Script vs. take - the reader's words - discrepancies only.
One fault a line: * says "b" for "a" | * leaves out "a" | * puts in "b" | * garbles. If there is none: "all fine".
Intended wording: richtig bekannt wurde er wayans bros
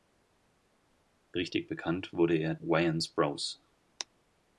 all fine